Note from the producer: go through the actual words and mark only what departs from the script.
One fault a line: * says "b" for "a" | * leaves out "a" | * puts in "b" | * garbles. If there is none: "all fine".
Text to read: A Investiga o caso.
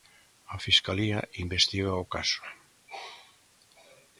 * puts in "Fiscalía"